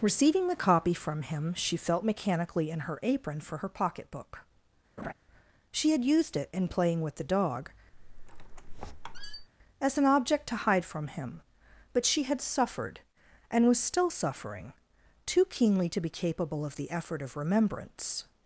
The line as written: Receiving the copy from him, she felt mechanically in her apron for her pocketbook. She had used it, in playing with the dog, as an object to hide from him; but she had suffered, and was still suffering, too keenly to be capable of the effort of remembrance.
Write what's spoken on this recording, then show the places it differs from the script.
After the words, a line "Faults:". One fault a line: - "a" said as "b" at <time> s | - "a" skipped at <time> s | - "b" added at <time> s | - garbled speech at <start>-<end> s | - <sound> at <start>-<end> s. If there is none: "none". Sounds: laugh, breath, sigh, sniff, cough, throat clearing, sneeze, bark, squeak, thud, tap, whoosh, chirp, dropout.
Receiving the copy from him, she felt mechanically in her apron for her pocketbook. She had used it, in playing with the dog, as an object to hide from him; but she had suffered, and was still suffering, too keenly to be capable of the effort of remembrance.
Faults:
- laugh at 5.0-5.1 s
- squeak at 7.9-9.5 s